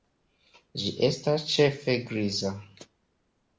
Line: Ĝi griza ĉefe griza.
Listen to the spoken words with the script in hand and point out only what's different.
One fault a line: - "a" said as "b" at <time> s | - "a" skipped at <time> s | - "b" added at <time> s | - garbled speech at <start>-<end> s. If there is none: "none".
- "griza" said as "estas" at 1.1 s